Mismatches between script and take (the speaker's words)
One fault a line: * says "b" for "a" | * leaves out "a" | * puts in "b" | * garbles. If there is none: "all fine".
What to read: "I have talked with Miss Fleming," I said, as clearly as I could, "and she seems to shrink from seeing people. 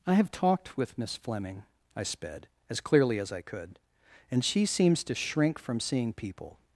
* says "sped" for "said"